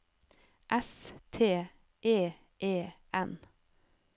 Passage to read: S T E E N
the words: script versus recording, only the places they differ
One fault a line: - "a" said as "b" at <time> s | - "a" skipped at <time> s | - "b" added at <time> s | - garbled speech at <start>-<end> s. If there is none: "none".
none